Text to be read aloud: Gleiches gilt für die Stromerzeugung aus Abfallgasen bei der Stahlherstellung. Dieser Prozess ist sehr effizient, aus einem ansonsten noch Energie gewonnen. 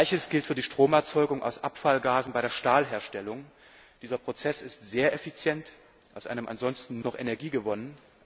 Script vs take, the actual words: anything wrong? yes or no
no